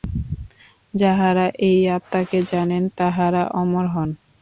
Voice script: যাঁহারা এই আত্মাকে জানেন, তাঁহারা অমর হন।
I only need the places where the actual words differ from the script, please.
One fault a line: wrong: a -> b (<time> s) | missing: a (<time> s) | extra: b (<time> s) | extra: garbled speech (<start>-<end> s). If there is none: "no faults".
no faults